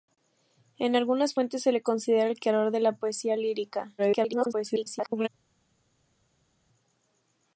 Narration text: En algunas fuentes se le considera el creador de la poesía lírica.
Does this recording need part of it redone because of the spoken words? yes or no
yes